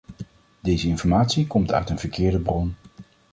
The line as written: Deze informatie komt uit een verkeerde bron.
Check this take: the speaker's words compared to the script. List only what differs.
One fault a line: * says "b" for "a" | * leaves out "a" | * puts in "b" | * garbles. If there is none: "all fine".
all fine